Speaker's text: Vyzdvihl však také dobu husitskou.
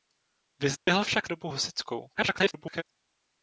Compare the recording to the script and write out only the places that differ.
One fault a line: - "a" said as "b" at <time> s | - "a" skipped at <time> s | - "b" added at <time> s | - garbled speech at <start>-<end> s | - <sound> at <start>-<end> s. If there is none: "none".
- dropout at 0.8-0.9 s
- "také" skipped at 1.3 s
- garbled speech at 2.1-2.8 s